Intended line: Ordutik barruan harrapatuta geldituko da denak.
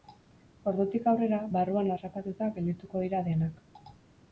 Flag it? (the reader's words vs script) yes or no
yes